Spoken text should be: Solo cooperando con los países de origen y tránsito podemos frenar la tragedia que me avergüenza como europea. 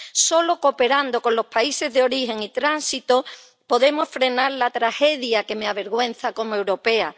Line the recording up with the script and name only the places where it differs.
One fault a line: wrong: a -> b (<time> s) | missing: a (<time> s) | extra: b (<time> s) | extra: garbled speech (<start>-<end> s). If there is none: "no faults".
no faults